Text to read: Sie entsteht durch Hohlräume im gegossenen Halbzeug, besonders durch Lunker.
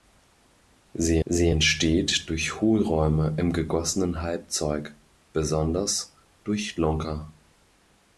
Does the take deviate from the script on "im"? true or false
false